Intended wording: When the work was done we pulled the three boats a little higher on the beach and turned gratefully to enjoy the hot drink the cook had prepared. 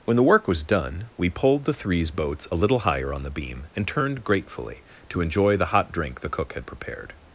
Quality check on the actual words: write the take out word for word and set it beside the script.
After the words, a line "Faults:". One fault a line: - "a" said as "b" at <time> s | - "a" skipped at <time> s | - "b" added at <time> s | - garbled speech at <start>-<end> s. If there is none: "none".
When the work was done we pulled the threes boats a little higher on the beam and turned gratefully to enjoy the hot drink the cook had prepared.
Faults:
- "three" said as "threes" at 1.7 s
- "beach" said as "beam" at 3.3 s